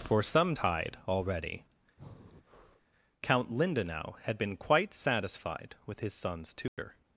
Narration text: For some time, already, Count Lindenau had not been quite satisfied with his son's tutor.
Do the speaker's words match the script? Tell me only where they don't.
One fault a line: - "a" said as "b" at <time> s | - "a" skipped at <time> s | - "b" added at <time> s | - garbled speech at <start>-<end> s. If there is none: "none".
- "time" said as "tide" at 0.5 s
- "not" skipped at 4.4 s